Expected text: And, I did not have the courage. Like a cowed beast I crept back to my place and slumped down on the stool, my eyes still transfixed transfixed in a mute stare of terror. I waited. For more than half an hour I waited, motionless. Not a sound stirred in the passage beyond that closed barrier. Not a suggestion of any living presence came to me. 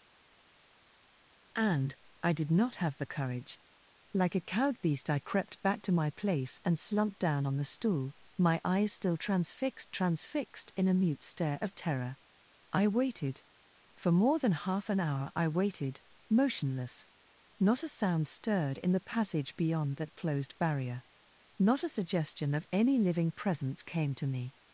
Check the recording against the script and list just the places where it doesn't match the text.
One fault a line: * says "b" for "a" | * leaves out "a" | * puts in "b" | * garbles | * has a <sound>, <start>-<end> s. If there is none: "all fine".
all fine